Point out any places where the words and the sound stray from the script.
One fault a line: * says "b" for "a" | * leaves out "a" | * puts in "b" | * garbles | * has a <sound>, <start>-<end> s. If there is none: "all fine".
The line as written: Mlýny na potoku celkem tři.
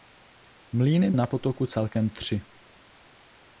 all fine